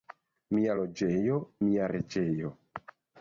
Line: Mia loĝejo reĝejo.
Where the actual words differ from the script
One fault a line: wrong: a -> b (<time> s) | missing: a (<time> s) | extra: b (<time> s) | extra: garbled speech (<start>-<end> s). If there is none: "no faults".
extra: mia (1.7 s)